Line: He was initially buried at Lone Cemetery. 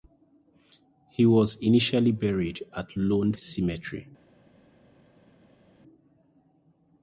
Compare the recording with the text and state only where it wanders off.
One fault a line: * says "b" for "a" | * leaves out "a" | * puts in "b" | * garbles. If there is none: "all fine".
all fine